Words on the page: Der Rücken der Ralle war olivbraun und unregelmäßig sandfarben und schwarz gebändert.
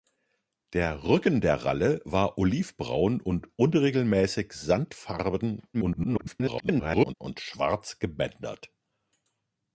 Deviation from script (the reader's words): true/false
true